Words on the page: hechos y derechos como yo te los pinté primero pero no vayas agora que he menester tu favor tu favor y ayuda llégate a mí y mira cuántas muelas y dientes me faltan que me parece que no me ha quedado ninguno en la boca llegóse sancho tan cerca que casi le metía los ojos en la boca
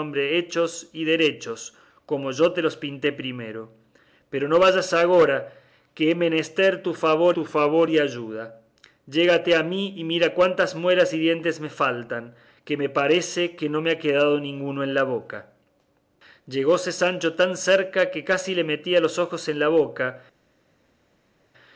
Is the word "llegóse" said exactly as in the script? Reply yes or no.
yes